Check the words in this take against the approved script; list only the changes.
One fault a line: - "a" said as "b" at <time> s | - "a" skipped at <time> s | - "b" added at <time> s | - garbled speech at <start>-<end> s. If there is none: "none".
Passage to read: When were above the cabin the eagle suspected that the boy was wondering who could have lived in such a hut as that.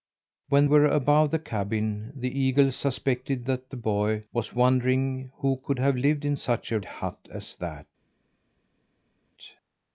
none